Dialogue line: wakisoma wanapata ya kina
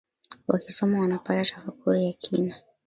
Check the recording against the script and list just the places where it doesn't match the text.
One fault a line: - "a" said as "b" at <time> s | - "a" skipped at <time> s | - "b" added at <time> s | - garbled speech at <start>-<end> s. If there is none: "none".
- "tafakuri" added at 1.4 s